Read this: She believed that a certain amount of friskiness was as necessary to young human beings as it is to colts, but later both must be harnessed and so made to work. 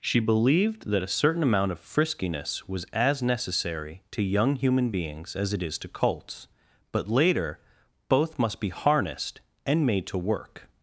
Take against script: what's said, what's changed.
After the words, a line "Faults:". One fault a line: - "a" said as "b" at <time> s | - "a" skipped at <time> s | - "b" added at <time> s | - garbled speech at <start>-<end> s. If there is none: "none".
She believed that a certain amount of friskiness was as necessary to young human beings as it is to colts, but later both must be harnessed and made to work.
Faults:
- "so" skipped at 9.8 s